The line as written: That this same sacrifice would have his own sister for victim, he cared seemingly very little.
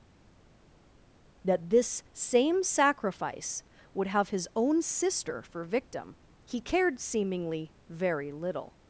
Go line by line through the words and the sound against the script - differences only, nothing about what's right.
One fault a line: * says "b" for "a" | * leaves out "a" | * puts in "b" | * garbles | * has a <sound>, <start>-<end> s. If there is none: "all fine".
all fine